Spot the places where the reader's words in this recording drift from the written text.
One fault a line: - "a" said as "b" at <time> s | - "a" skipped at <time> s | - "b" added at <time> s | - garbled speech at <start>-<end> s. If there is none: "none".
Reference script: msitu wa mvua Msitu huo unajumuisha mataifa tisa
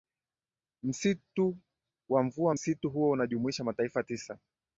none